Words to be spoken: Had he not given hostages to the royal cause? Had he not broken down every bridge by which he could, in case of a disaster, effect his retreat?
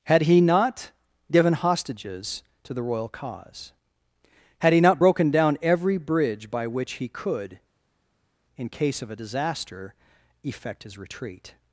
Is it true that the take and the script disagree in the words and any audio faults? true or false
false